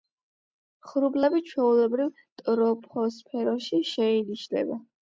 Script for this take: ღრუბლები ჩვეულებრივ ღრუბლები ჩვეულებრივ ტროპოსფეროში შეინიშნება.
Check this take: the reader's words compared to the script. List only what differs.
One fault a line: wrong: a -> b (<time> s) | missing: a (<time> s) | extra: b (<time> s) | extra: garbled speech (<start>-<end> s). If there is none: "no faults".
missing: ღრუბლები ჩვეულებრივ (2.1 s)